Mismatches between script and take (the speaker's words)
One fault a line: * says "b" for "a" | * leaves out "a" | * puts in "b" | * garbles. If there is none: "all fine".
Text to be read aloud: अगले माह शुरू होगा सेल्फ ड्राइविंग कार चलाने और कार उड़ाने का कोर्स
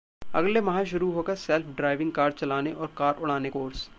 * leaves out "का"